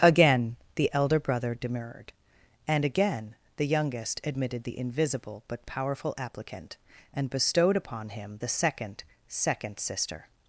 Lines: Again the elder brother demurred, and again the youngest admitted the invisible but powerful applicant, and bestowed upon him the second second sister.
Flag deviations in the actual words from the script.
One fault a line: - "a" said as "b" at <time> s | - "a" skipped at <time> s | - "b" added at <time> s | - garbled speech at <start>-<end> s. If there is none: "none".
none